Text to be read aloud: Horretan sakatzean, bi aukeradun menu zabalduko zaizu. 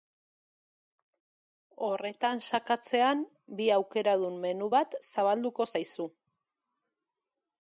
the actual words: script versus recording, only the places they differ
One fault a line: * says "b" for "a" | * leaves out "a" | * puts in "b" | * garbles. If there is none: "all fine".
* puts in "bat"